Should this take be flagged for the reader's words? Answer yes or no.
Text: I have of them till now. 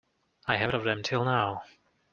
no